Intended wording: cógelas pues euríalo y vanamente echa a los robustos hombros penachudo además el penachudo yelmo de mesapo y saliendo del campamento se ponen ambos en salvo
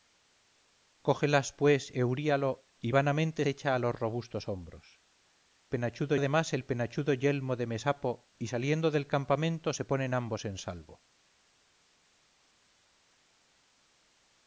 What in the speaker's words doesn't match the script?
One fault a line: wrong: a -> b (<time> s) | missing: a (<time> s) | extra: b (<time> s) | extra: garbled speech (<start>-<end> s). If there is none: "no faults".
no faults